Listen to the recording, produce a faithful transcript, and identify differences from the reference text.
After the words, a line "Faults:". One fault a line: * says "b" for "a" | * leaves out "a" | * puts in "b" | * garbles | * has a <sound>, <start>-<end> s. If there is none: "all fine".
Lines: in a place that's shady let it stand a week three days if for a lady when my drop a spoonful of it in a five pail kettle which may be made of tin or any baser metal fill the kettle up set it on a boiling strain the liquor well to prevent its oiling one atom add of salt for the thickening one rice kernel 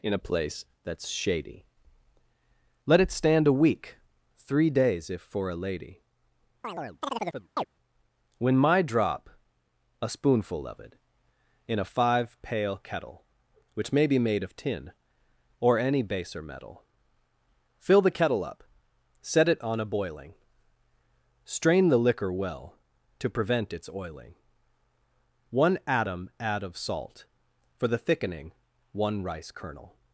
in a place that's shady let it stand a week three days if for a lady when my drop a spoonful of it in a five pail kettle which may be made of tin or any baser metal fill the kettle up set it on a boiling strain the liquor well to prevent its oiling one atom add of salt for the thickening one rice kernel
Faults:
* has a chirp, 6.6-7.7 s